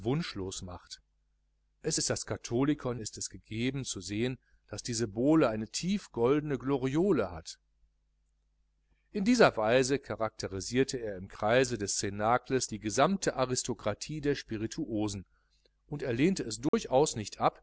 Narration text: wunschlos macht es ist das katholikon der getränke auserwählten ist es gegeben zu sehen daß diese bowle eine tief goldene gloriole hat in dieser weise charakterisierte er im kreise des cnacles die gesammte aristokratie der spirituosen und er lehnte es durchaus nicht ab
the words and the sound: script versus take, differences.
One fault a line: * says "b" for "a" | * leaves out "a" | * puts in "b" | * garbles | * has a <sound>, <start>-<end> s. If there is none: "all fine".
* leaves out "der getränke auserwählten"
* has a dropout, 16.7-16.7 s